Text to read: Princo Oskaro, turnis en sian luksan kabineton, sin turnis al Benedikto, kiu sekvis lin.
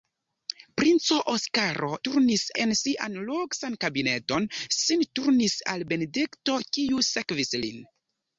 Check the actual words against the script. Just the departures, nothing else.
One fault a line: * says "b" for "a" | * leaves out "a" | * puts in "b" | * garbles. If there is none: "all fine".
all fine